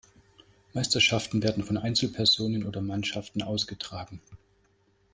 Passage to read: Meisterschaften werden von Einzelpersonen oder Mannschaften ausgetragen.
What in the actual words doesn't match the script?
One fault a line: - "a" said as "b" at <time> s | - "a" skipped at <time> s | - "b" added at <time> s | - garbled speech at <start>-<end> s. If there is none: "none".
none